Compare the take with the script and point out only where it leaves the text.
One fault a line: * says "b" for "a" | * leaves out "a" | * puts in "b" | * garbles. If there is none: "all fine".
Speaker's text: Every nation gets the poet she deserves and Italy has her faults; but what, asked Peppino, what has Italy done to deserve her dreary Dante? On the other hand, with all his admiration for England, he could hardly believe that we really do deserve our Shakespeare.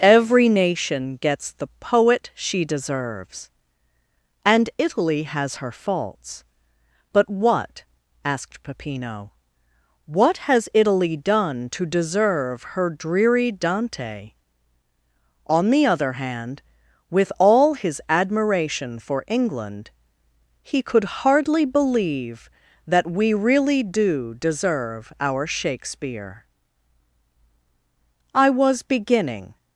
* puts in "I was beginning"